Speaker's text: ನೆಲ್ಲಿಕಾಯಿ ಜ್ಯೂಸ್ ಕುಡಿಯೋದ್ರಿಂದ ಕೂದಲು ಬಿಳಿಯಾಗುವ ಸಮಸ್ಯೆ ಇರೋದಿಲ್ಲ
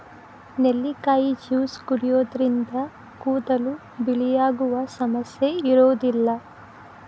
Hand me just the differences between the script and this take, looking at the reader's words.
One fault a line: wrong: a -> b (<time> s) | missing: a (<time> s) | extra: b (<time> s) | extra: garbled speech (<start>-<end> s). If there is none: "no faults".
no faults